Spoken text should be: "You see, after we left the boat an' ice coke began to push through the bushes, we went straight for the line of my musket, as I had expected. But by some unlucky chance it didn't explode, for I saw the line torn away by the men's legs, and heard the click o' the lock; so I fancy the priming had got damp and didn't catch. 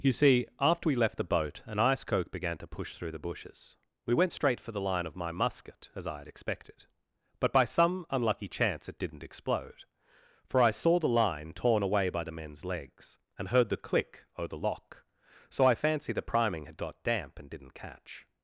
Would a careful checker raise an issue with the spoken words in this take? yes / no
no